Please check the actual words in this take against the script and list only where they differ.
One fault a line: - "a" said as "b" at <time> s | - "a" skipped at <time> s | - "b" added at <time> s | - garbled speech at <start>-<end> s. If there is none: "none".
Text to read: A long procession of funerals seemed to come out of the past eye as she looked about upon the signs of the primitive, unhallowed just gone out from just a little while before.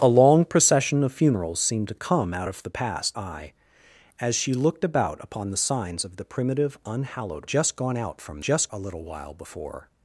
none